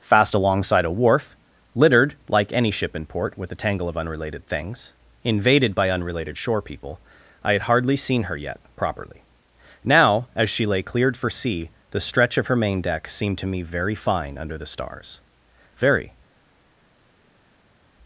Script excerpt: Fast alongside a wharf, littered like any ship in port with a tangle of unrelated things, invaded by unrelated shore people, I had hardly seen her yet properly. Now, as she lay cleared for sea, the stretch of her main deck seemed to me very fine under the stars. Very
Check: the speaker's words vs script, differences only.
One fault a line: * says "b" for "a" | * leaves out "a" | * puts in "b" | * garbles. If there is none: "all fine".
all fine